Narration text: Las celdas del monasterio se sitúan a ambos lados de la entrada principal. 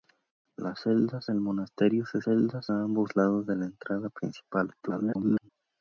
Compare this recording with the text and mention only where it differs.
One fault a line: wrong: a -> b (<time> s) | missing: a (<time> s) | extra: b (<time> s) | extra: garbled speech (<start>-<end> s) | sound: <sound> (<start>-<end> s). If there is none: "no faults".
wrong: sitúan -> celdas (2.2 s)
extra: garbled speech (4.8-5.5 s)